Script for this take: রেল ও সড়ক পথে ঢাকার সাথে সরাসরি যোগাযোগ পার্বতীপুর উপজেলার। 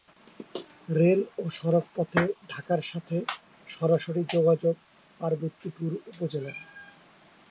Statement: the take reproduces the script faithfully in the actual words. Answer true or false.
true